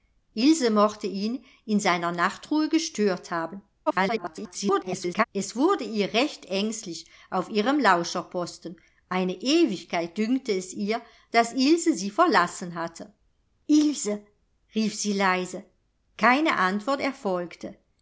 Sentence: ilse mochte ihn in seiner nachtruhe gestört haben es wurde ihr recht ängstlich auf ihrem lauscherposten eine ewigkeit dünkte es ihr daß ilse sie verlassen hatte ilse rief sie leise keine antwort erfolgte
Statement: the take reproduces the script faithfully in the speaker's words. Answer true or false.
false